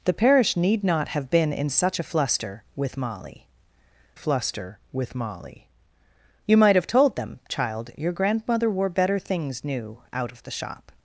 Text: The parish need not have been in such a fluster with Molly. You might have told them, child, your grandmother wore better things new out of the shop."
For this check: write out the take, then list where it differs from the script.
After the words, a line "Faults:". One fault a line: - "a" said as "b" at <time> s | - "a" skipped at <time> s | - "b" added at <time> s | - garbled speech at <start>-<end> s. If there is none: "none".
The parish need not have been in such a fluster with Molly fluster with Molly. You might have told them, child, your grandmother wore better things new out of the shop."
Faults:
- "fluster with Molly" added at 4.1 s